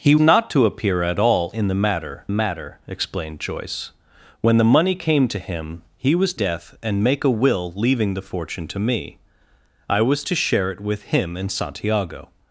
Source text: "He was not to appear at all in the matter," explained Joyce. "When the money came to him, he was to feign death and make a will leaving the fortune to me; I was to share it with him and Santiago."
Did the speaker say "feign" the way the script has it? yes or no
no